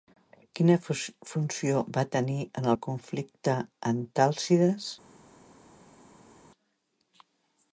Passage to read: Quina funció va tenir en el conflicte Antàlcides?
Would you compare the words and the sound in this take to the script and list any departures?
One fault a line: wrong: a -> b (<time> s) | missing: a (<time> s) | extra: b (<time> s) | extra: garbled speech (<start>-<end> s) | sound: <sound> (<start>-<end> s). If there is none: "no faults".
no faults